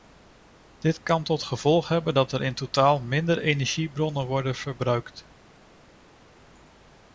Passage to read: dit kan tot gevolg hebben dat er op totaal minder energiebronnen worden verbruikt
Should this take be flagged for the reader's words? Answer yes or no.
yes